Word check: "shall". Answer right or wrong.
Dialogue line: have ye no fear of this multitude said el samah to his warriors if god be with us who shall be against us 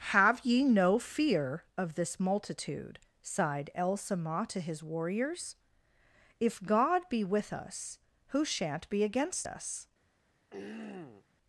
wrong